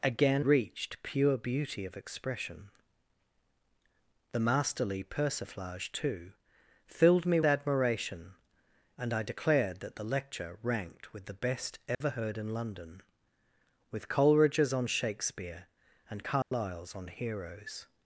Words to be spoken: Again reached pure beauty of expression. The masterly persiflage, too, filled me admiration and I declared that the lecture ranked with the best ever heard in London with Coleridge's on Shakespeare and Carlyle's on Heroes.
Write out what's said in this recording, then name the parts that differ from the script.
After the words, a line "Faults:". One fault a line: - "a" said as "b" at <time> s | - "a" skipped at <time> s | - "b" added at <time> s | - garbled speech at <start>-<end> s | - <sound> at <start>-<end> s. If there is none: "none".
Again reached pure beauty of expression. The masterly persiflage, too, filled me admiration and I declared that the lecture ranked with the best ever heard in London with Coleridge's on Shakespeare and Carlyle's on Heroes.
Faults:
- dropout at 11.9-12.0 s
- dropout at 16.4-16.5 s